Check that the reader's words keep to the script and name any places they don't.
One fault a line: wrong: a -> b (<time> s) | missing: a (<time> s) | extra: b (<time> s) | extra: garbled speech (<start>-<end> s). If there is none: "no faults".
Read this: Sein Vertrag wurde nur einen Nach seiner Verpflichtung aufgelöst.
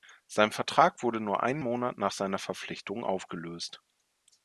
extra: Monat (1.6 s)